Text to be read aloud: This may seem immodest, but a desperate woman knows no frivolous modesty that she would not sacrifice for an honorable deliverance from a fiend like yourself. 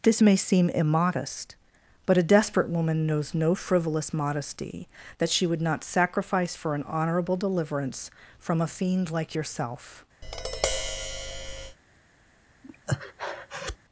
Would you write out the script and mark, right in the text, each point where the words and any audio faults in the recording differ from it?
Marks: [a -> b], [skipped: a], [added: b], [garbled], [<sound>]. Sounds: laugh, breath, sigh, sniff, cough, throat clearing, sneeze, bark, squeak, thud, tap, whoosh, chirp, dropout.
This may seem immodest, but a desperate woman knows no frivolous modesty that she would not sacrifice for an honorable deliverance from a fiend like yourself. [tap] [breath]